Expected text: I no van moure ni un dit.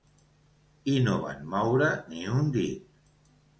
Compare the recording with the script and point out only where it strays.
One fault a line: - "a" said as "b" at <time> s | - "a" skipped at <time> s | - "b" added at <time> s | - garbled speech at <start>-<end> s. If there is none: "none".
none